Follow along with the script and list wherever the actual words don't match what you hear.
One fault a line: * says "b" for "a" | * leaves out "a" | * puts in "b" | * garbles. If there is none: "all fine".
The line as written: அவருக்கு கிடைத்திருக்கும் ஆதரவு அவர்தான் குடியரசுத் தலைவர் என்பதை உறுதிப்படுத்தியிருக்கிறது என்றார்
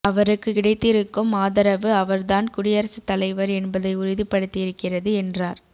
all fine